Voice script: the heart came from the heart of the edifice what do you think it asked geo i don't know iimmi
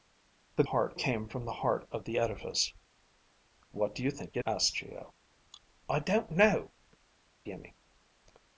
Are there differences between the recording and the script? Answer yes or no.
no